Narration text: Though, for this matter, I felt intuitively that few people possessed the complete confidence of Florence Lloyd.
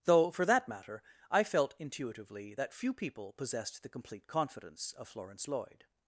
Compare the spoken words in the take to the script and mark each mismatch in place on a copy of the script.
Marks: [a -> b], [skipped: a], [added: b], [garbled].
Though, for [this -> that] matter, I felt intuitively that few people possessed the complete confidence of Florence Lloyd.